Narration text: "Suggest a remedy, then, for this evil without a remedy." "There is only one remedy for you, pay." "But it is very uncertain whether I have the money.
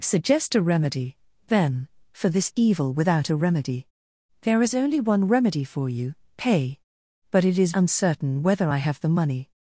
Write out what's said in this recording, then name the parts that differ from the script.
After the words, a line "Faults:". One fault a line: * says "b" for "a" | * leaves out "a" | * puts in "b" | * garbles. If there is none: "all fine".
"Suggest a remedy, then, for this evil without a remedy." "There is only one remedy for you, pay." "But it is uncertain whether I have the money.
Faults:
* leaves out "very"